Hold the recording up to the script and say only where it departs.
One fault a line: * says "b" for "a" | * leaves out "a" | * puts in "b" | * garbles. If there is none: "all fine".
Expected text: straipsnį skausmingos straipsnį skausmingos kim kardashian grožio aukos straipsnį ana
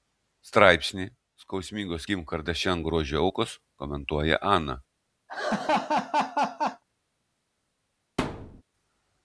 * leaves out "straipsnį skausmingos"
* says "komentuoja" for "straipsnį"